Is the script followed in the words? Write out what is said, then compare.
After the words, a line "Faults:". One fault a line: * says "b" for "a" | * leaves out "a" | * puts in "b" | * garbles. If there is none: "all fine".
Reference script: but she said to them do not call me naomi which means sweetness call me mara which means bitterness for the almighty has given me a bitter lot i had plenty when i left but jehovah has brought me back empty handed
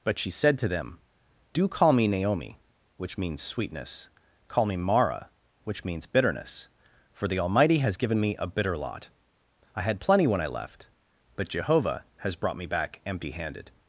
but she said to them do call me naomi which means sweetness call me mara which means bitterness for the almighty has given me a bitter lot i had plenty when i left but jehovah has brought me back empty handed
Faults:
* leaves out "not"